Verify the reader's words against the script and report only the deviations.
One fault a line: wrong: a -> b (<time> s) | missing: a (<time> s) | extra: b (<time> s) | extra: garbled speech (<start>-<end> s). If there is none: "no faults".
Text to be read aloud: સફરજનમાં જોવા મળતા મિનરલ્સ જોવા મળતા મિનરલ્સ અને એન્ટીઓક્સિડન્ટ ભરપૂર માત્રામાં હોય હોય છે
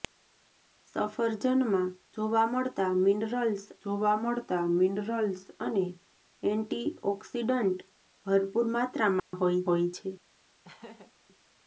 no faults